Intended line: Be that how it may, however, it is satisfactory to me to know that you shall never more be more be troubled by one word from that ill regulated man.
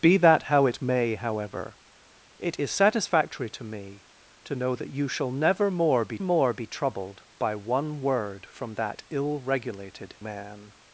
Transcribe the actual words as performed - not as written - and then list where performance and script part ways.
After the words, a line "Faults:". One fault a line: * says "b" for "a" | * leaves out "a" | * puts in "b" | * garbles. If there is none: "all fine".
Be that how it may, however, it is satisfactory to me to know that you shall never more be more be troubled by one word from that ill regulated man.
Faults:
all fine